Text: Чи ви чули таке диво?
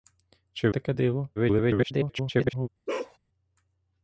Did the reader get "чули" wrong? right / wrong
wrong